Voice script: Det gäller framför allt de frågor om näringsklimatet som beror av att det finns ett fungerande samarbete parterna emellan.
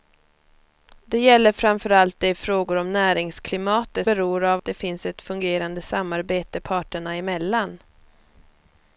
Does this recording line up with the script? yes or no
no